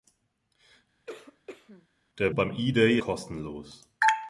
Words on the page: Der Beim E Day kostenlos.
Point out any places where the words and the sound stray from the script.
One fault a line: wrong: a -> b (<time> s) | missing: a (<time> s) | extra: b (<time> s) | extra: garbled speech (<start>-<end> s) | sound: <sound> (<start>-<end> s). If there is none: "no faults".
sound: cough (1.1-1.9 s)